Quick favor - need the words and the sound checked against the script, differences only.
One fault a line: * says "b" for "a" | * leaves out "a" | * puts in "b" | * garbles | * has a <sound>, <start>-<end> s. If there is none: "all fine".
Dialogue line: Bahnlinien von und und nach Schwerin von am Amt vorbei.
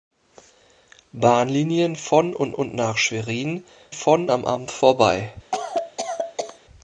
* has a cough, 5.5-6.6 s